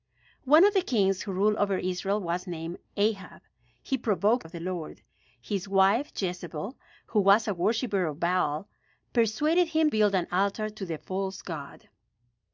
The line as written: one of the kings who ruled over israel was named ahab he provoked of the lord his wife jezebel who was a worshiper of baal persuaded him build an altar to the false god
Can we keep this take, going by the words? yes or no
yes